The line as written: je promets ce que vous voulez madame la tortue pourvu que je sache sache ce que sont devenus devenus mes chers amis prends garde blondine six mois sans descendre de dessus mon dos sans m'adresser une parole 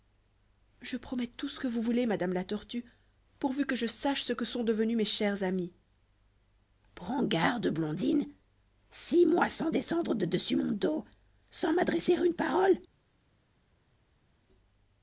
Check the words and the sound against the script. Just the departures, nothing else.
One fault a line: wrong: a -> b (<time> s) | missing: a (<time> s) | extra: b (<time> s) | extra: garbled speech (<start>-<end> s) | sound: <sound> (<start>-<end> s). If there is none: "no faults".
extra: tout (1.3 s)
missing: sache (4.2 s)
missing: devenus (5.0 s)